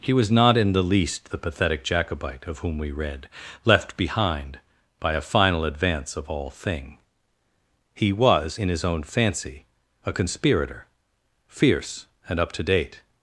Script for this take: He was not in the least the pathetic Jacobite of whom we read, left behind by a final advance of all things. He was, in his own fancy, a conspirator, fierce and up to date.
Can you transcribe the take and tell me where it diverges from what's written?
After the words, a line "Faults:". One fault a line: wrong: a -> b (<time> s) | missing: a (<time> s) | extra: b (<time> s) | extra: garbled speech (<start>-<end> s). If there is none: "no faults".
He was not in the least the pathetic Jacobite of whom we read, left behind by a final advance of all thing. He was, in his own fancy, a conspirator, fierce and up to date.
Faults:
wrong: things -> thing (6.5 s)